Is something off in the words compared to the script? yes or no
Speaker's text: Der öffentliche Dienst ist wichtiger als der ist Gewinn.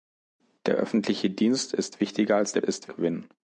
no